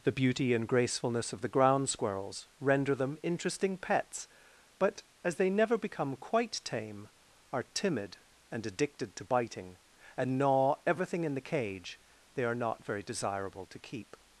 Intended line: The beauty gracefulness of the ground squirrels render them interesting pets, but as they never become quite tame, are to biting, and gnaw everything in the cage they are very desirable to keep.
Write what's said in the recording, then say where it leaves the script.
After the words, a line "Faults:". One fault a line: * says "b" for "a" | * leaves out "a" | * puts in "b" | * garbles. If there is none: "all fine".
The beauty and gracefulness of the ground squirrels render them interesting pets, but as they never become quite tame, are timid and addicted to biting, and gnaw everything in the cage they are not very desirable to keep.
Faults:
* puts in "and"
* puts in "timid and addicted"
* puts in "not"